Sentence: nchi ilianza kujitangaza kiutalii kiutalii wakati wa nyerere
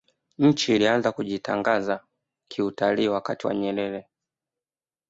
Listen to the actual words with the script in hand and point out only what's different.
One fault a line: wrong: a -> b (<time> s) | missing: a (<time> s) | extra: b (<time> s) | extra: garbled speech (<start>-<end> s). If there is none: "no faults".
missing: kiutalii (3.1 s)